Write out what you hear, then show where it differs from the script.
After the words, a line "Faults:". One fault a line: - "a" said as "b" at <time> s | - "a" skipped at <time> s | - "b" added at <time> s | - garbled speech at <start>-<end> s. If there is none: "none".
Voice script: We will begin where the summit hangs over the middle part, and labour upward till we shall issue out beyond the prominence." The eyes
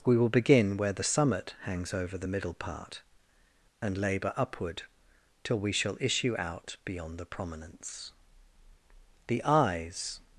We will begin where the summit hangs over the middle part, and labour upward till we shall issue out beyond the prominence." The eyes
Faults:
none